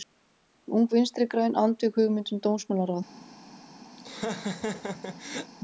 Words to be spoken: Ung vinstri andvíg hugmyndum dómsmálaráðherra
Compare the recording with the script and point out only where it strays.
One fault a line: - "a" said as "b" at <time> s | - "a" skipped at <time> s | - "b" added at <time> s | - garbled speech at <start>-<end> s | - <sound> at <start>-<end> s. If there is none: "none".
- "græn" added at 1.3 s
- laugh at 4.0-5.5 s